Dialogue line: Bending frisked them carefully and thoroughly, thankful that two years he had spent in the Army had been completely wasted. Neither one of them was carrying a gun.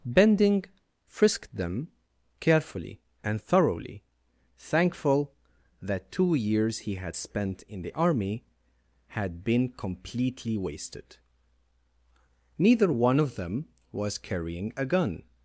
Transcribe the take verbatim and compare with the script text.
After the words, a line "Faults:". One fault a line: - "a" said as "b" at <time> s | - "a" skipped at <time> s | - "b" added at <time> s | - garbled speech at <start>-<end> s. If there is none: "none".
Bending frisked them carefully and thoroughly, thankful that two years he had spent in the Army had been completely wasted. Neither one of them was carrying a gun.
Faults:
none